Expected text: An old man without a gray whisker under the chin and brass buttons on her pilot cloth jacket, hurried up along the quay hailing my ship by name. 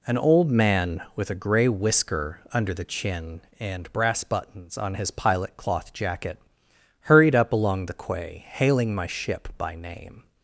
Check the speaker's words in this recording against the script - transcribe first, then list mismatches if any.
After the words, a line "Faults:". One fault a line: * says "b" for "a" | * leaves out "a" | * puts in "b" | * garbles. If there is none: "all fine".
An old man with a gray whisker under the chin and brass buttons on his pilot cloth jacket, hurried up along the quay hailing my ship by name.
Faults:
* says "with" for "without"
* says "his" for "her"